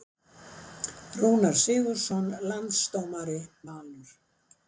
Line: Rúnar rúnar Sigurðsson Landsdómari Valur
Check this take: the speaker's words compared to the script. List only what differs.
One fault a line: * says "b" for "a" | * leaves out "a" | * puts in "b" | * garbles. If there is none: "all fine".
* leaves out "rúnar"